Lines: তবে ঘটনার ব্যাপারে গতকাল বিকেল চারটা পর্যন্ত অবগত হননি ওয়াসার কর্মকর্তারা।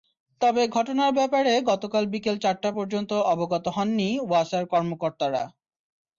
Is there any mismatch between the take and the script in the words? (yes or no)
no